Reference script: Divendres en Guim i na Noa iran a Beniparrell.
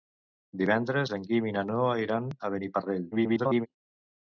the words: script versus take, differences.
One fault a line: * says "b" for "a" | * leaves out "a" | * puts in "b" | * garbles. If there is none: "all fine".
* garbles